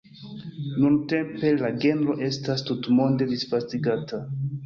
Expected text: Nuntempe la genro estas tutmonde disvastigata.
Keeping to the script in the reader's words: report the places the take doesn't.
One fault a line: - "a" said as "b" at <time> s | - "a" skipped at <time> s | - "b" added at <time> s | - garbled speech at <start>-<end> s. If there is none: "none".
none